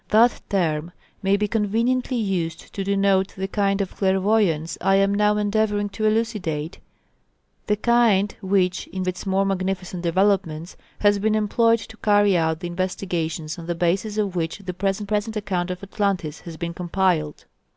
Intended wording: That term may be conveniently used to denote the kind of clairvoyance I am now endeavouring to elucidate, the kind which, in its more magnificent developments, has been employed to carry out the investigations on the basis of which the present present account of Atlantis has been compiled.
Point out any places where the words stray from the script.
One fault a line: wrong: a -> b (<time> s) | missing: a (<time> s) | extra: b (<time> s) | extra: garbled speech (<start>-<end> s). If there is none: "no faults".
no faults